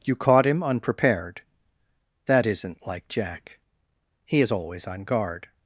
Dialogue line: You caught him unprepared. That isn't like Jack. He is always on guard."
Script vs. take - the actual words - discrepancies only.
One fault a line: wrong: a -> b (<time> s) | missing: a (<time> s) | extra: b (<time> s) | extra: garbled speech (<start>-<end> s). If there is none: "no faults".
no faults